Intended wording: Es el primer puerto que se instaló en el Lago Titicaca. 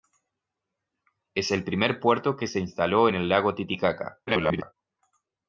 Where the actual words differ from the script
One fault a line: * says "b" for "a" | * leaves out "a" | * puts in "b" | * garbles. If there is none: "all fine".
* garbles